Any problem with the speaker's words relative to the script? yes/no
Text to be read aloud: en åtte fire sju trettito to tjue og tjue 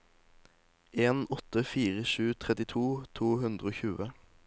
yes